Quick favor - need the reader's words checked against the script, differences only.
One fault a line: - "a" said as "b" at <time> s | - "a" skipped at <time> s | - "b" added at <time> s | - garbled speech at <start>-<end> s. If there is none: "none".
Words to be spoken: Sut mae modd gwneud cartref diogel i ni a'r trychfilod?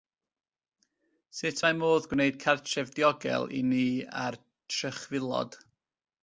none